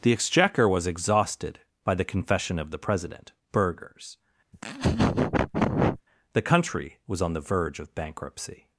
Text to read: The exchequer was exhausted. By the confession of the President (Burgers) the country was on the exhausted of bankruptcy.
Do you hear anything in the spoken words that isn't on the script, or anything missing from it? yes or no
yes